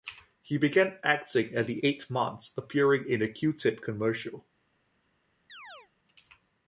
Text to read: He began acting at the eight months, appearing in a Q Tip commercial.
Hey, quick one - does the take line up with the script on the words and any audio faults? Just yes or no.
no